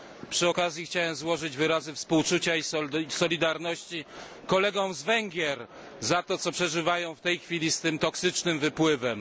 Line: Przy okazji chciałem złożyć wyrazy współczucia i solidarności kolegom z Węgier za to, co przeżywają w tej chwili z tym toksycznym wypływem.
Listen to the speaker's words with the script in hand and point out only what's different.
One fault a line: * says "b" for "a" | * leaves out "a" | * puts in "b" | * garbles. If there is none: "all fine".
all fine